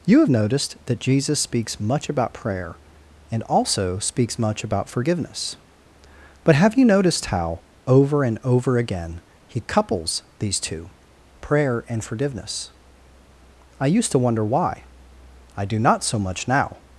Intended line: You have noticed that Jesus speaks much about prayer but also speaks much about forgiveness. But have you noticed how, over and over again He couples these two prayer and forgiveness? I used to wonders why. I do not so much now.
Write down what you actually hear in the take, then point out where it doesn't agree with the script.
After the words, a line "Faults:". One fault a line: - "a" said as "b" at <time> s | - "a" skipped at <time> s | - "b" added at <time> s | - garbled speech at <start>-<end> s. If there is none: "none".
You have noticed that Jesus speaks much about prayer and also speaks much about forgiveness. But have you noticed how, over and over again He couples these two prayer and forgiveness? I used to wonder why. I do not so much now.
Faults:
- "but" said as "and" at 3.3 s
- "wonders" said as "wonder" at 14.2 s